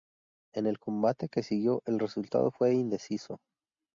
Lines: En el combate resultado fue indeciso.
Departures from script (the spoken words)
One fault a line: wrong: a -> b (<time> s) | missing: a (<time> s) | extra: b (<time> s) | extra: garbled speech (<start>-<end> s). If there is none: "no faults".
extra: que siguió el (1.3 s)